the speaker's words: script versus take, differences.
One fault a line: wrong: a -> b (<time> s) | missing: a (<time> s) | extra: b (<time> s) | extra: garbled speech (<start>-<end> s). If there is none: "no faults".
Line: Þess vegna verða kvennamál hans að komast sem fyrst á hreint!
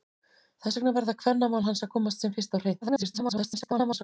extra: garbled speech (2.8-4.0 s)